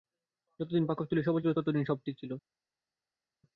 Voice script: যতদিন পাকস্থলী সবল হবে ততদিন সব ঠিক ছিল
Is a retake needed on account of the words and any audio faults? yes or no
yes